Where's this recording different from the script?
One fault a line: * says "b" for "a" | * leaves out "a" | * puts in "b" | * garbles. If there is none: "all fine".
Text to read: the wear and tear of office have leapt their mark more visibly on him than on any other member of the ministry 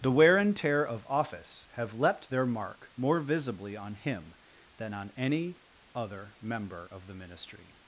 all fine